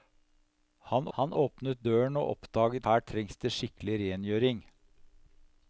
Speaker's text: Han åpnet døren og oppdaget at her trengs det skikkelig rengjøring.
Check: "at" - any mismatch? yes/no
yes